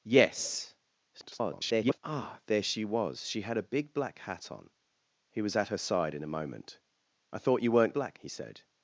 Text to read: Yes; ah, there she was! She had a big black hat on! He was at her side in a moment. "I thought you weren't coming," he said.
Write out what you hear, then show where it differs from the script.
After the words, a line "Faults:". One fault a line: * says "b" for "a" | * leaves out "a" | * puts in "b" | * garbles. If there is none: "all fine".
Yes; [garbled] ah, there she was! She had a big black hat on! He was at her side in a moment. "I thought you weren't black," he said.
Faults:
* garbles
* says "black" for "coming"